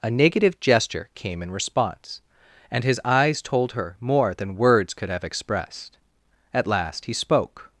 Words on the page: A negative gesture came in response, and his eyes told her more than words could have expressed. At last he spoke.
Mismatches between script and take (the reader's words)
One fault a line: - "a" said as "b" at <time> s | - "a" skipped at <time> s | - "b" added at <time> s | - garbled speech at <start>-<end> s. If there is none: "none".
none